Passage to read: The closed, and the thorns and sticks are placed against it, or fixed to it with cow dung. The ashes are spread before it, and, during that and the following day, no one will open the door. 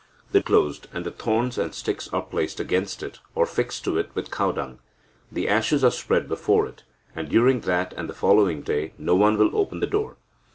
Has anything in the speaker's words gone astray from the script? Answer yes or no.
no